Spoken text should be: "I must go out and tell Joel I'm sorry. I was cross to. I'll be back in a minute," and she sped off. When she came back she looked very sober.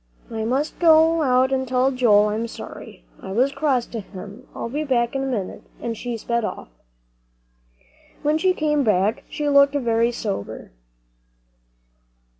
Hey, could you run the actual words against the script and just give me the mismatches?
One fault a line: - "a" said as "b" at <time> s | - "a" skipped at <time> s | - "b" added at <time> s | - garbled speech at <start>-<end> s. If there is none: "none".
- "him" added at 4.0 s